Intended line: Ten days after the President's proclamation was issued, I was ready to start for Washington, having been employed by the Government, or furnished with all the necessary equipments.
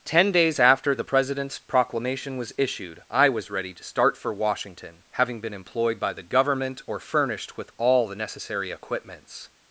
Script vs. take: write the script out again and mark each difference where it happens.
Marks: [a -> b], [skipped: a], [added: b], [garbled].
Ten days after the President's proclamation was issued, I was ready to start for Washington, having been employed by the Government, or furnished with all the necessary equipments.